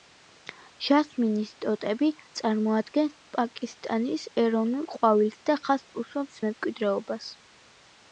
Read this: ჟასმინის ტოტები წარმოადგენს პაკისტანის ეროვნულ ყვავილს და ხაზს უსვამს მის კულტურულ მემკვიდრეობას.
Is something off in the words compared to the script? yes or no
yes